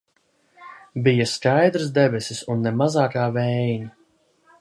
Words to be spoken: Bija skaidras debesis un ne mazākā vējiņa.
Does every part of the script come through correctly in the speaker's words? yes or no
yes